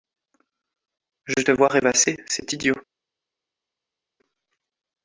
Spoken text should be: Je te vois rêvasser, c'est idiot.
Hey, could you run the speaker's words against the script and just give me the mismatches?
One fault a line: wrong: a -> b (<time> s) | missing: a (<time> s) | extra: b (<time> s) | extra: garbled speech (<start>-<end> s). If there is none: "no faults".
no faults